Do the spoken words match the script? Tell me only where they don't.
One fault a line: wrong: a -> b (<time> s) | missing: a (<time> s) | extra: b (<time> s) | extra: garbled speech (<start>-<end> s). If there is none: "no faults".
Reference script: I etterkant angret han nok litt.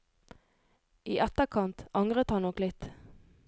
no faults